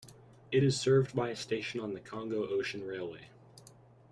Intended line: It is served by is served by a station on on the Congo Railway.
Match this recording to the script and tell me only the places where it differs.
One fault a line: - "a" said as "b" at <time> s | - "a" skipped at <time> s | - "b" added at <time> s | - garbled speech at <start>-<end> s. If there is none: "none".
- "is served by" skipped at 1.3 s
- "on" skipped at 1.9 s
- "Ocean" added at 2.5 s